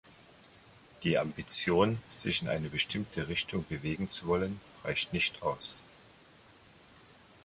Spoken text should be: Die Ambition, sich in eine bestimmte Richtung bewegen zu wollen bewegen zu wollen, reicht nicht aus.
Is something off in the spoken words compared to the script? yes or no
yes